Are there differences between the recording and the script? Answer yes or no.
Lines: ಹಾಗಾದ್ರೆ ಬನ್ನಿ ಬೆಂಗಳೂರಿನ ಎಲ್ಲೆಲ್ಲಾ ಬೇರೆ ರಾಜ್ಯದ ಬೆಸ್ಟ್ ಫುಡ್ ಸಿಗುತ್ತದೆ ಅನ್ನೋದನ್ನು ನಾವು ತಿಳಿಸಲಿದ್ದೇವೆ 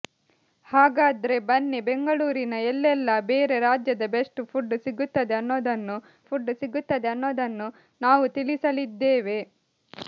yes